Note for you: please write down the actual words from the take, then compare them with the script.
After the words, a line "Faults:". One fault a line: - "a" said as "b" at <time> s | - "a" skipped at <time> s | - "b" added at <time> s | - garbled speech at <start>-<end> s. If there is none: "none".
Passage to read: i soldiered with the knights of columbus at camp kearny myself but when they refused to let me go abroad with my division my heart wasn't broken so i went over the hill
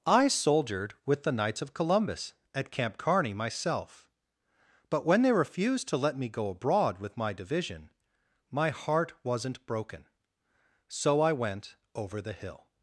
i soldiered with the knights of columbus at camp kearny myself but when they refused to let me go abroad with my division my heart wasn't broken so i went over the hill
Faults:
none